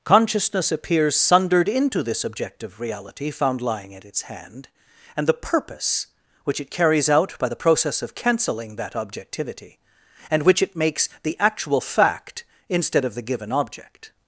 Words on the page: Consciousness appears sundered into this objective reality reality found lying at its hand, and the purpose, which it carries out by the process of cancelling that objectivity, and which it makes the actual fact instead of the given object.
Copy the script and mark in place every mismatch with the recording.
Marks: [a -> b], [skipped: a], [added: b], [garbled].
Consciousness appears sundered into this objective reality [skipped: reality] found lying at its hand, and the purpose, which it carries out by the process of cancelling that objectivity, and which it makes the actual fact instead of the given object.